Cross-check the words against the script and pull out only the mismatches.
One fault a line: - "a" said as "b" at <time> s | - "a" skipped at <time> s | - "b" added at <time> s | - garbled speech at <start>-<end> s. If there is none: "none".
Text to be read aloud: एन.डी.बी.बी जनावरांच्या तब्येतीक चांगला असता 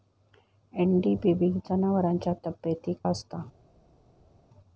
- "चांगला" skipped at 3.0 s